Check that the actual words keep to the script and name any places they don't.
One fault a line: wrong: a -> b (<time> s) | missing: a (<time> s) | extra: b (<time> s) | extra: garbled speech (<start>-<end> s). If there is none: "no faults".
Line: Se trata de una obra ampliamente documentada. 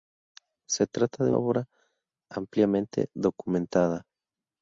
missing: una (1.3 s)